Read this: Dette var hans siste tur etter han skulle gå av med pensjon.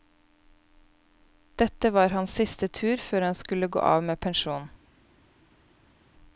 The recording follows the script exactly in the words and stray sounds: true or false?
false